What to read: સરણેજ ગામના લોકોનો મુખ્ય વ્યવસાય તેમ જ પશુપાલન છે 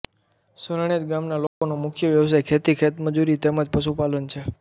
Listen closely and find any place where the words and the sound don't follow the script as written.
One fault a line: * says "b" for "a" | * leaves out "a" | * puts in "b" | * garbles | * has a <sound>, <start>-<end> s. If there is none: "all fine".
* has a dropout, 1.5-1.6 s
* puts in "ખેતી ખેતમજૂરી"